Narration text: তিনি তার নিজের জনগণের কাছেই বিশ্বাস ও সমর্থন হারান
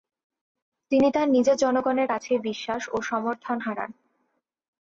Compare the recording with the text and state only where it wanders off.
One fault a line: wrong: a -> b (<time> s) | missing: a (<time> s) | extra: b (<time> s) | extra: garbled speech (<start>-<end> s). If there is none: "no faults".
no faults